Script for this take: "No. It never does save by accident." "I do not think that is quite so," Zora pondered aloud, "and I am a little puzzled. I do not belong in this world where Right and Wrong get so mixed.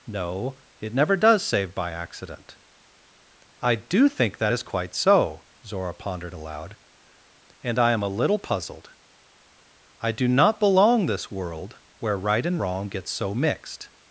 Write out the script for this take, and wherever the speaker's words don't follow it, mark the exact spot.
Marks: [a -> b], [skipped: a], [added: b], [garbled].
"No. It never does save by accident." "I do [skipped: not] think that is quite so," Zora pondered aloud, "and I am a little puzzled. I do not belong [skipped: in] this world where Right and Wrong get so mixed.